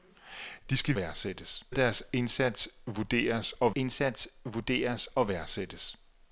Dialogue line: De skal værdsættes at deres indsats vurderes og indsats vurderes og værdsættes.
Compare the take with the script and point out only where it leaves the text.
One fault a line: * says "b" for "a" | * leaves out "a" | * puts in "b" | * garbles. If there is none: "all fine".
all fine